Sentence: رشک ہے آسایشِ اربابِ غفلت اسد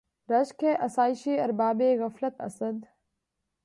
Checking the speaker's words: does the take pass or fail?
pass